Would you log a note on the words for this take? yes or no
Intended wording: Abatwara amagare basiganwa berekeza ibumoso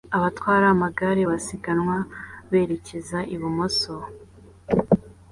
no